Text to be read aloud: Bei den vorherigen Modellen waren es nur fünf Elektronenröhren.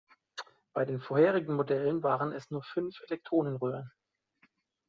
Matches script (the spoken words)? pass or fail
pass